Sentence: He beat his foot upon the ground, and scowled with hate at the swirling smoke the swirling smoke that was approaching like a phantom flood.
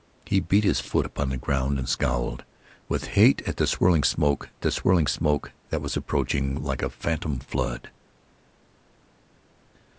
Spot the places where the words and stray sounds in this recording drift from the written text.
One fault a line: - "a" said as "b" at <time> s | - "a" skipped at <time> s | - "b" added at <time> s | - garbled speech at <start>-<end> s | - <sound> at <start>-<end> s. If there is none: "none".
none